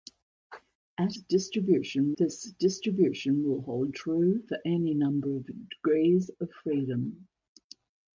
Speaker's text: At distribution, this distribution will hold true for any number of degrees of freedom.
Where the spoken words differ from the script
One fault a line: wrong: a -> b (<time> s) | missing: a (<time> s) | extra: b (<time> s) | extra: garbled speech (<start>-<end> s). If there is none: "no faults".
no faults